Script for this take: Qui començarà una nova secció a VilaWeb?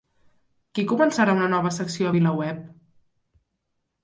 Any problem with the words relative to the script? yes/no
no